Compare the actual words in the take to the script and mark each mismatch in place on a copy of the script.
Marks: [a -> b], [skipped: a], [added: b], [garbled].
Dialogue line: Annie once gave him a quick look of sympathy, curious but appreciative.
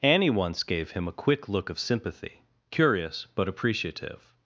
Annie once gave him a quick look of sympathy, curious but appreciative.